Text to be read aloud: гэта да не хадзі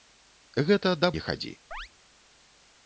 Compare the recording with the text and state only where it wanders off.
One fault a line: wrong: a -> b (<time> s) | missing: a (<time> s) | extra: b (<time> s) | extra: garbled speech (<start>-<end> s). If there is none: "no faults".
no faults